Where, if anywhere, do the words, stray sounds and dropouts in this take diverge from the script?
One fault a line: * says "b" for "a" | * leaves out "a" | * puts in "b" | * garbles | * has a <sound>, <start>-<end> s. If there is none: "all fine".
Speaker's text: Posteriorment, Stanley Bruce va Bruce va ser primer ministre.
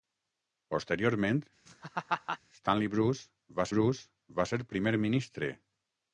* has a laugh, 1.7-2.4 s